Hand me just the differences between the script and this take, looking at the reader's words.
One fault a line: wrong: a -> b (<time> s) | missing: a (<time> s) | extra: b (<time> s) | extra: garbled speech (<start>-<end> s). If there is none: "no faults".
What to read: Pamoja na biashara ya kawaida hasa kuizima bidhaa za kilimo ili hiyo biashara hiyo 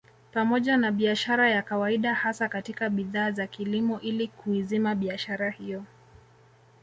wrong: kuizima -> katika (2.5 s)
wrong: hiyo -> kuizima (4.3 s)